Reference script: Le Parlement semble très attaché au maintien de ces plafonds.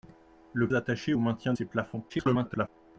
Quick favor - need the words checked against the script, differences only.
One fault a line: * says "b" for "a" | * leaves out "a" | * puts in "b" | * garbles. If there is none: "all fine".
* leaves out "Parlement semble très"
* leaves out "de"
* garbles